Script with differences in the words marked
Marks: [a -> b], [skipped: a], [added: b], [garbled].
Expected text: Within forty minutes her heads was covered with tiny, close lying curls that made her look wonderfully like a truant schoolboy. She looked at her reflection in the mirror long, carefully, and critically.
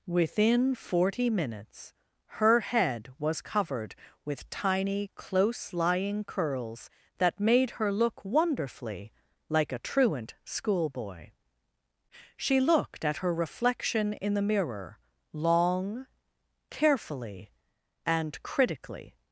Within forty minutes her [heads -> head] was covered with tiny, close lying curls that made her look wonderfully like a truant schoolboy. She looked at her reflection in the mirror long, carefully, and critically.